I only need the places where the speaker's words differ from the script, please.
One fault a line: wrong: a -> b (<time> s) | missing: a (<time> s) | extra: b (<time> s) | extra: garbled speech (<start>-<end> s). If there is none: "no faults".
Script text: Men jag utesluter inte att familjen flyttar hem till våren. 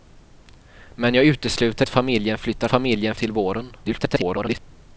missing: inte (1.9 s)
wrong: hem -> familjen (2.7 s)
extra: garbled speech (3.8-4.6 s)